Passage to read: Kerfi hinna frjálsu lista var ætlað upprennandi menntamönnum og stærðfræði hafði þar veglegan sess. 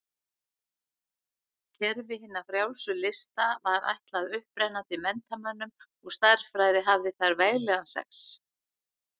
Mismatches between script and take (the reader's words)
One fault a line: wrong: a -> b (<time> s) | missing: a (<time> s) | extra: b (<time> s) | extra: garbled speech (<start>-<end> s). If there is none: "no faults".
no faults